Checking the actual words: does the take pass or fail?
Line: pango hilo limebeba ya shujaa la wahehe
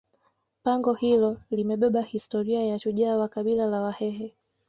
fail